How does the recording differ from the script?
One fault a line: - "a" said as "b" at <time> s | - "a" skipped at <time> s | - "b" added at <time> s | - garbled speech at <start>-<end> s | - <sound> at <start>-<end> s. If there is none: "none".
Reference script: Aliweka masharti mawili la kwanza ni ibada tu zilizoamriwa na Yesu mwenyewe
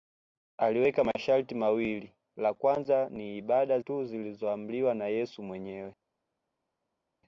none